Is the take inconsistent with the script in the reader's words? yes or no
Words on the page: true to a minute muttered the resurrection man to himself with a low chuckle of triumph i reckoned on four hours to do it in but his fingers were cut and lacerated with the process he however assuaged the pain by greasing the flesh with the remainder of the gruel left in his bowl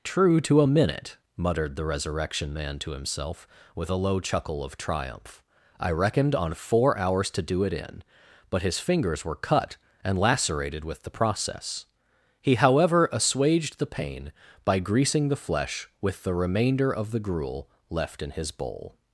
no